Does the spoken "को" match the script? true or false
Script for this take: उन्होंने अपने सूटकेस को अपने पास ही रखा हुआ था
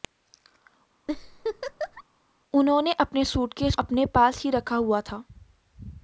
false